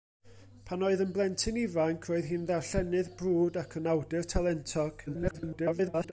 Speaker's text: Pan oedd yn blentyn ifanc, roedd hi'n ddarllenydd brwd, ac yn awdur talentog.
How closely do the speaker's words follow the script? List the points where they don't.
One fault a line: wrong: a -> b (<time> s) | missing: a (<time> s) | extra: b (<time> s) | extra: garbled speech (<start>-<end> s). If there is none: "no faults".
extra: garbled speech (5.1-6.1 s)